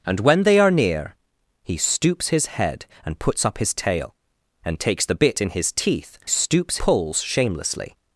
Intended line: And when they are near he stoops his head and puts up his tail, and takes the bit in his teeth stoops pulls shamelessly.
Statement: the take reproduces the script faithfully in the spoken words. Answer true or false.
true